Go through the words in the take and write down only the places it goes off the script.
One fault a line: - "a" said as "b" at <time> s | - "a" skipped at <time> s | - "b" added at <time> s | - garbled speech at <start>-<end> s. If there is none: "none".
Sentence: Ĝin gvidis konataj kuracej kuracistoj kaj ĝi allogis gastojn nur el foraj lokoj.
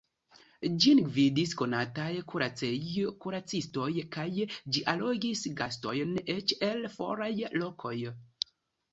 - "nur" said as "eĉ" at 6.4 s